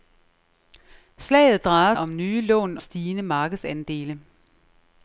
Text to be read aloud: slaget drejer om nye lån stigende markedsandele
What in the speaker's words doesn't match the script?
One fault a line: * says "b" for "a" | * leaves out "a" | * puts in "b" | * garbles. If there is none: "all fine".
all fine